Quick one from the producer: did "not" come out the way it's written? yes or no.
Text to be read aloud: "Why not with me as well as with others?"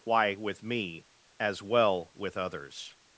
no